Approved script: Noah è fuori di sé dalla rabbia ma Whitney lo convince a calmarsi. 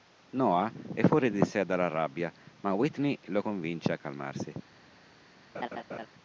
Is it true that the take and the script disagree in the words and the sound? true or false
true